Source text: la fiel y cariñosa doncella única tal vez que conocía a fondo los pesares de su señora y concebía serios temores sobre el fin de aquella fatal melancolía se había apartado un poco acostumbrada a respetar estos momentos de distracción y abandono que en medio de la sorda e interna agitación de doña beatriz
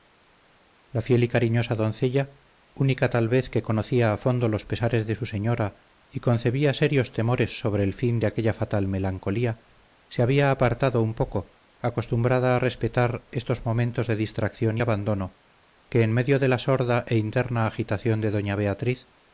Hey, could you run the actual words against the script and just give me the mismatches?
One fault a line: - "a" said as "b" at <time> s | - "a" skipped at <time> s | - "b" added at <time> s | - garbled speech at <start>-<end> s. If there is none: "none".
none